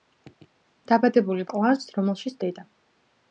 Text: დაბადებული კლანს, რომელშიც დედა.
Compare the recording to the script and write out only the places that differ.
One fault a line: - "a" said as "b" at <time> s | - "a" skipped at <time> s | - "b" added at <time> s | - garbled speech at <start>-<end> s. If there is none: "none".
none